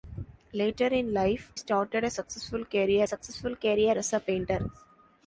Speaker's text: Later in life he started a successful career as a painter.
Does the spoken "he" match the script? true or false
false